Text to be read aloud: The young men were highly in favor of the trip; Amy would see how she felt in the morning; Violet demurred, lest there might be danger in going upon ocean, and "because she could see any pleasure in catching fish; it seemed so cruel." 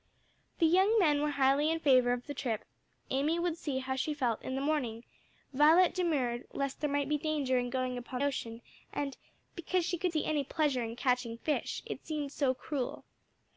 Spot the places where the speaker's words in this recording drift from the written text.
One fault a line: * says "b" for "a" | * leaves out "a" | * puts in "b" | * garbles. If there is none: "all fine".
all fine